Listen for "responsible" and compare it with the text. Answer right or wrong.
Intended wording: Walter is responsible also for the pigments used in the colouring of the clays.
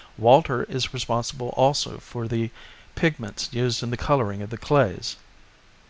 right